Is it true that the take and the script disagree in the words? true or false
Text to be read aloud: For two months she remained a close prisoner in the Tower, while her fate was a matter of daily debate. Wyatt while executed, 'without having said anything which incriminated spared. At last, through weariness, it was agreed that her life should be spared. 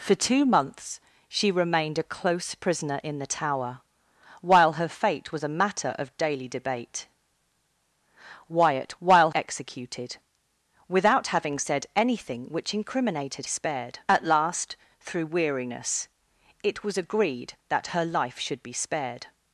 false